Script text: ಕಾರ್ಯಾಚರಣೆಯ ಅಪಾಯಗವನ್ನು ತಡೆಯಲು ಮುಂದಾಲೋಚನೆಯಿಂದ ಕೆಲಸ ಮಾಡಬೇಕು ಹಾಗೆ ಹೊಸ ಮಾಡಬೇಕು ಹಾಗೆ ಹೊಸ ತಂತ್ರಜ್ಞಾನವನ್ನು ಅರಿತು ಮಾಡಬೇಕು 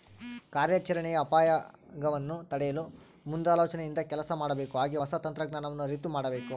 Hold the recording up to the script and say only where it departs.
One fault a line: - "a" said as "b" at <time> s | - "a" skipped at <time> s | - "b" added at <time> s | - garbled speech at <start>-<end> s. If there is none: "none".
- "ಮಾಡಬೇಕು ಹಾಗೆ ಹೊಸ" skipped at 5.1 s